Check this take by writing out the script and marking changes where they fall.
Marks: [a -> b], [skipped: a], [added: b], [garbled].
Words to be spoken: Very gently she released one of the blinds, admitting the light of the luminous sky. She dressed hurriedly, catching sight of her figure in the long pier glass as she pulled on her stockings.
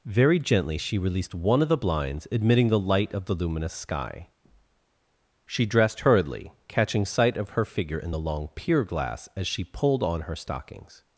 Very gently she released one of the blinds, admitting the light of the luminous sky. She dressed hurriedly, catching sight of her figure in the long pier glass as she pulled on her stockings.